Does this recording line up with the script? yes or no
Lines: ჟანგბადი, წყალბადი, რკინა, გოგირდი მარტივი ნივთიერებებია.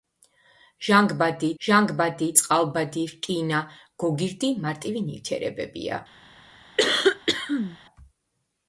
no